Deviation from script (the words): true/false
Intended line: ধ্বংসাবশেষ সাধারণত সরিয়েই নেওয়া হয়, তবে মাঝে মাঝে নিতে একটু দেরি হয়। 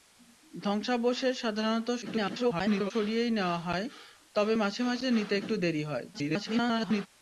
true